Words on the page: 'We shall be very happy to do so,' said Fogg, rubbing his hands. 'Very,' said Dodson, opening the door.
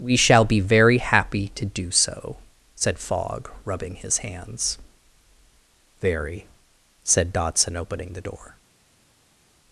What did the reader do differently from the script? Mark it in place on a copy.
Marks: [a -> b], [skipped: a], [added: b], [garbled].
'We shall be very happy to do so,' said Fogg, rubbing his hands. 'Very,' said Dodson, opening the door.